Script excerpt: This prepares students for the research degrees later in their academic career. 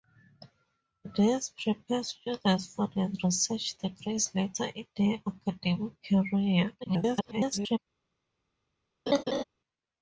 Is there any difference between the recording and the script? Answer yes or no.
yes